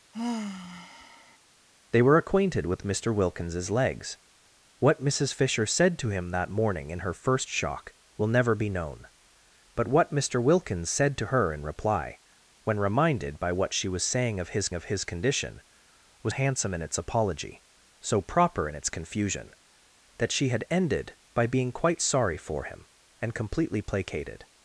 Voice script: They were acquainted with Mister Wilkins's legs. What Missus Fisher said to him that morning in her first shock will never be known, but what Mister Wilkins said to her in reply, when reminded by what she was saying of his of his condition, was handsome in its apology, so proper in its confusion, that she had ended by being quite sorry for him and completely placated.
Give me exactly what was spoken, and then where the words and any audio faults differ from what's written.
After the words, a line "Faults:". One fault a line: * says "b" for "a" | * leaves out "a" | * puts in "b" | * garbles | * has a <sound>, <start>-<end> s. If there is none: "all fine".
They were acquainted with Mister Wilkins's legs. What Missus Fisher said to him that morning in her first shock will never be known, but what Mister Wilkins said to her in reply, when reminded by what she was saying of his of his condition, was handsome in its apology, so proper in its confusion, that she had ended by being quite sorry for him and completely placated.
Faults:
* has a sigh, 0.1-1.4 s